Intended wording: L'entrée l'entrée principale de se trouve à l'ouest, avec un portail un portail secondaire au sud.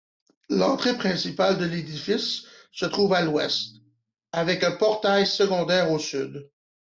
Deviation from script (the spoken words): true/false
true